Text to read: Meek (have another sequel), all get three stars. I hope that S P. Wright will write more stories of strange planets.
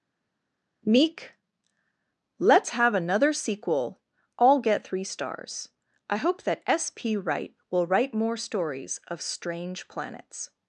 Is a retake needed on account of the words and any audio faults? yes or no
yes